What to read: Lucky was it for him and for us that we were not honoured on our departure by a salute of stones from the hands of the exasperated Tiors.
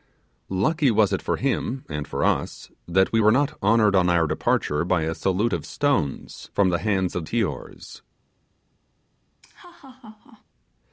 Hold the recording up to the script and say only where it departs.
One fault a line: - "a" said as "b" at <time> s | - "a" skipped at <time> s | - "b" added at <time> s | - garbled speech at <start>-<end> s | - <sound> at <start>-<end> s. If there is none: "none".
- "the exasperated" skipped at 7.3 s
- laugh at 9.4-10.4 s